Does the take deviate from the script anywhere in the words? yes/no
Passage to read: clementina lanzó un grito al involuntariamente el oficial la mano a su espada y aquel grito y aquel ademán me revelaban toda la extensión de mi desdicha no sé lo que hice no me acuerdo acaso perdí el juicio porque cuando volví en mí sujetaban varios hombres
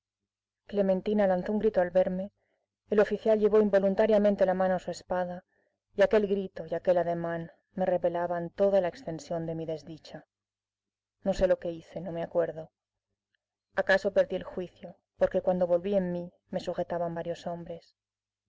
yes